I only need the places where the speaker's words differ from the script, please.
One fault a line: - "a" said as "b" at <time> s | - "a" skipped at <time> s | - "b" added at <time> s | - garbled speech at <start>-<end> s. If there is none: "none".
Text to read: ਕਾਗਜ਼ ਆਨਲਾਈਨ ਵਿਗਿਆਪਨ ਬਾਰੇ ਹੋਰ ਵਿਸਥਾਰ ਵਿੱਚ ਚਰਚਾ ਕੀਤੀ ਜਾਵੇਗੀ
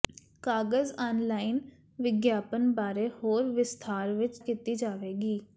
- "ਚਰਚਾ" skipped at 4.4 s